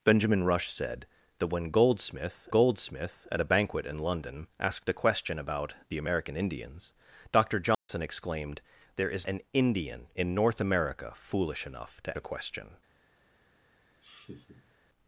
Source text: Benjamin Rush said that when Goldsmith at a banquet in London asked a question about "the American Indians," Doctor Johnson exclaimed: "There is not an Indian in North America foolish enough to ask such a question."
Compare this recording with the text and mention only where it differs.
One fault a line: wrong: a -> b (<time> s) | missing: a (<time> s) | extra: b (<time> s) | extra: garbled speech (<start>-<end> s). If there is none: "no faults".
extra: Goldsmith (2.5 s)
missing: not (9.3 s)
missing: ask such (12.2 s)